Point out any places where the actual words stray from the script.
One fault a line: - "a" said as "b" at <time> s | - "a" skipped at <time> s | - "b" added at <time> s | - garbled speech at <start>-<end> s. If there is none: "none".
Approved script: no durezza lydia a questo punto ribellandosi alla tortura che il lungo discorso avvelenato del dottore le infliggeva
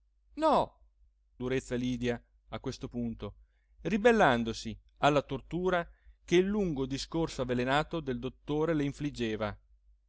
none